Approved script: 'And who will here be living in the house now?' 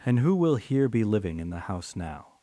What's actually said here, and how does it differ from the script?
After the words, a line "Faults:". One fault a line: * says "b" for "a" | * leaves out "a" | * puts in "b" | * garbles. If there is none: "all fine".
'And who will here be living in the house now?'
Faults:
all fine